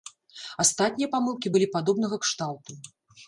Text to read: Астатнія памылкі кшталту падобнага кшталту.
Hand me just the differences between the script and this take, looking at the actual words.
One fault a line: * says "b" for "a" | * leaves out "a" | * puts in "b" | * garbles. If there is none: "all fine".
* says "былі" for "кшталту"